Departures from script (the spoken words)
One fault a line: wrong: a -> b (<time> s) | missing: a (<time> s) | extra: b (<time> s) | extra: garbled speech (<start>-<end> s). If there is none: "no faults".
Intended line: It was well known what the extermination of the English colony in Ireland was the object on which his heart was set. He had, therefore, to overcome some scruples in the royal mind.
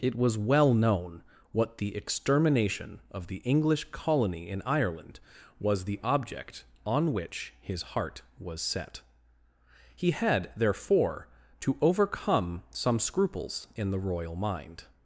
no faults